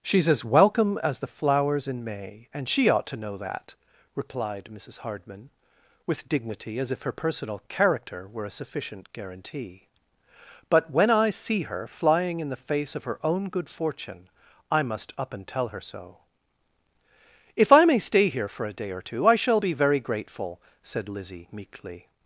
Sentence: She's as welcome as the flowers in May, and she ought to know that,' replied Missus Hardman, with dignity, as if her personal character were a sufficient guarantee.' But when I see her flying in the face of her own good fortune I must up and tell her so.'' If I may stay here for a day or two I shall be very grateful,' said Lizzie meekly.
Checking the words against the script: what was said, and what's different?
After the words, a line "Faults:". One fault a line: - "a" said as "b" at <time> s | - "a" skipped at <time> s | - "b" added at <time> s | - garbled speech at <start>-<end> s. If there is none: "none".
She's as welcome as the flowers in May, and she ought to know that,' replied Missus Hardman, with dignity, as if her personal character were a sufficient guarantee.' But when I see her flying in the face of her own good fortune I must up and tell her so.'' If I may stay here for a day or two I shall be very grateful,' said Lizzie meekly.
Faults:
none